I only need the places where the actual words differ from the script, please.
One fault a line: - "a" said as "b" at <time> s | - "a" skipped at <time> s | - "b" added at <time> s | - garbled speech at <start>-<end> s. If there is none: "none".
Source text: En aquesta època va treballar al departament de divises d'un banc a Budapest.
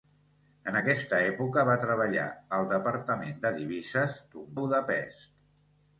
- "banc" skipped at 4.5 s